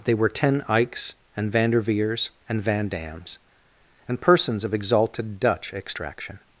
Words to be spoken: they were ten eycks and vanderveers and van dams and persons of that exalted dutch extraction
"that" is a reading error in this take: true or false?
true